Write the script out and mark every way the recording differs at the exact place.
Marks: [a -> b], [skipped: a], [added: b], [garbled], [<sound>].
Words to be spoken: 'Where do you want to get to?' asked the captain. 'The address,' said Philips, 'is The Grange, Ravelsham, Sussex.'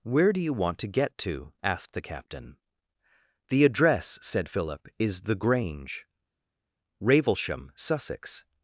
'Where do you want to get to?' asked the captain. 'The address,' said [Philips, -> Philip] 'is The Grange, Ravelsham, Sussex.'